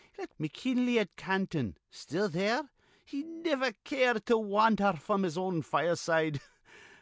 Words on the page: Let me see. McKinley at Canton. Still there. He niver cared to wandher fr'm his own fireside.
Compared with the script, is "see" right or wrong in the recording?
wrong